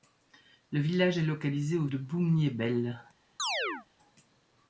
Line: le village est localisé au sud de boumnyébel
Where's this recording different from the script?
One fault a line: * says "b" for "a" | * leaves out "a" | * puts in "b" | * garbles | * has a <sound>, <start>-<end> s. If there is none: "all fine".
* leaves out "sud"
* has a chirp, 3.4-3.9 s